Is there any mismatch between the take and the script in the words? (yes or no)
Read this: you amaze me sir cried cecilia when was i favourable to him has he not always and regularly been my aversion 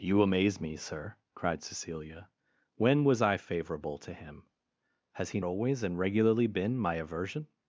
yes